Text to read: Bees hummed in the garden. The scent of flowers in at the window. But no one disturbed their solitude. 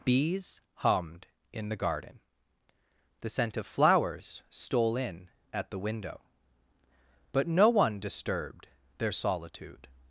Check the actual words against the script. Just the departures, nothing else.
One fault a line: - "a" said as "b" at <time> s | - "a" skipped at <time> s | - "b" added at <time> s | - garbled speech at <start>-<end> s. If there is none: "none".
- "stole" added at 4.5 s